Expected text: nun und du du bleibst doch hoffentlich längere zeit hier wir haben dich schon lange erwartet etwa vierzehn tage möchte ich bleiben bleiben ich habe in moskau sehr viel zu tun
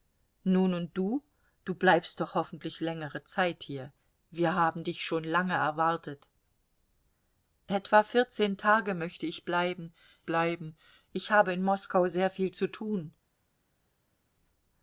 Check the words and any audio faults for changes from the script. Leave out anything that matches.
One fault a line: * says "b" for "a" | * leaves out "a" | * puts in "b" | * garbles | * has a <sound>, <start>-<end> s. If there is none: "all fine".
all fine